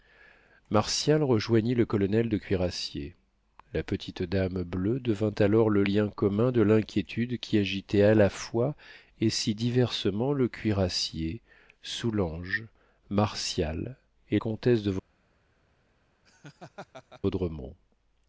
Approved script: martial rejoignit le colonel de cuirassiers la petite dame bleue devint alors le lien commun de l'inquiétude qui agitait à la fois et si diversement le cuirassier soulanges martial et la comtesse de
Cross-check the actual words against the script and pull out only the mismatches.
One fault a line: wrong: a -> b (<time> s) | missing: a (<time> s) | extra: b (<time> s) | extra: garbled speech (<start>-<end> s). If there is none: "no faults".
missing: la (14.4 s)